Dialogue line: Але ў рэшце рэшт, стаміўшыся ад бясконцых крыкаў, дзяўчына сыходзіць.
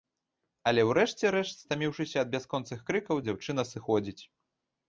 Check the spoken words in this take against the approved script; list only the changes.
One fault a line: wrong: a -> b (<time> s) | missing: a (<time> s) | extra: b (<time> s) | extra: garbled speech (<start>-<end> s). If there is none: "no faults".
no faults